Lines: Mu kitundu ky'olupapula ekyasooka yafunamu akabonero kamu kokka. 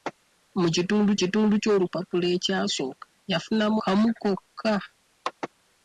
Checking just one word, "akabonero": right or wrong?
wrong